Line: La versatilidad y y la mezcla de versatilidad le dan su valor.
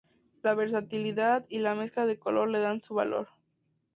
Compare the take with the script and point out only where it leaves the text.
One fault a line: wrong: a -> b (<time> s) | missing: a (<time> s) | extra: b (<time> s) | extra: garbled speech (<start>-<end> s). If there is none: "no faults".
missing: y (1.6 s)
wrong: versatilidad -> color (2.2 s)